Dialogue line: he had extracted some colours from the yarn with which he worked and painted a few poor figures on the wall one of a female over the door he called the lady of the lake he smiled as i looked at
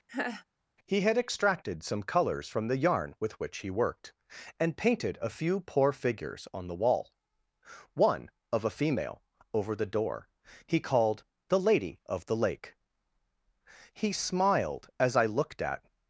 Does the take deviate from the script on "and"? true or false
false